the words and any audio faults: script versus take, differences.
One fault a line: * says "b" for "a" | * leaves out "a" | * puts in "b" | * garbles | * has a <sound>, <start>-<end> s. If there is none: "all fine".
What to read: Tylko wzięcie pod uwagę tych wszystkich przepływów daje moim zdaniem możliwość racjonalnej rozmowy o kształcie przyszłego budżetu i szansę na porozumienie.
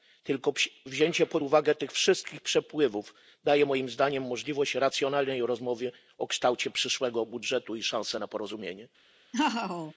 * has a laugh, 9.3-9.9 s